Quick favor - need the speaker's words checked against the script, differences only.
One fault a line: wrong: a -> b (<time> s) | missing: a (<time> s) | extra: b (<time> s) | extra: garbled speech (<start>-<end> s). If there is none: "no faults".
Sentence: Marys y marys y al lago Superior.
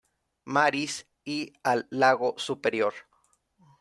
missing: marys y (1.5 s)